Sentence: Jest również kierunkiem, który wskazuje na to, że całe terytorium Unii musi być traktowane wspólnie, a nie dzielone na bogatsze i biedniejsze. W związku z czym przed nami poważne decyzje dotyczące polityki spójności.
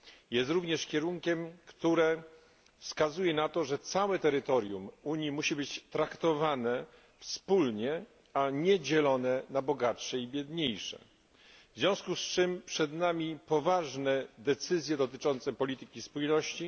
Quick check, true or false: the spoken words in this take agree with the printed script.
true